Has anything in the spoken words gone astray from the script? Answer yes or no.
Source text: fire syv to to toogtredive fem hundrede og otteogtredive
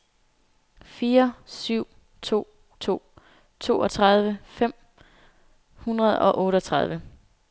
no